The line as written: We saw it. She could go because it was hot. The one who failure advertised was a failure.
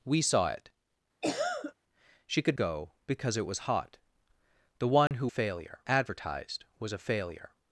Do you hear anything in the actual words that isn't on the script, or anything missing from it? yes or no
no